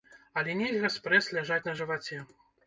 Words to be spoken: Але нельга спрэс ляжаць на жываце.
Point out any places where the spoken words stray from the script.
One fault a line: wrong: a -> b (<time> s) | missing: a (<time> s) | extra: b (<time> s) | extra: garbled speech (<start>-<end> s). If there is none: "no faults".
no faults